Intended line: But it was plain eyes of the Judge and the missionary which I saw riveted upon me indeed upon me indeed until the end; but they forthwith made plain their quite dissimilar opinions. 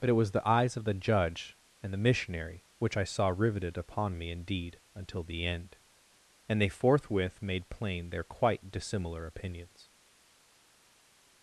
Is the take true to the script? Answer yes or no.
no